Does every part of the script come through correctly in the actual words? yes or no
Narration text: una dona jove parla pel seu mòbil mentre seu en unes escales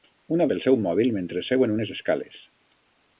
no